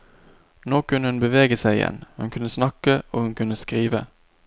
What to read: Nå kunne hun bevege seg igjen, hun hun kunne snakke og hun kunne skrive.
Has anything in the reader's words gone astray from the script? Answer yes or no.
yes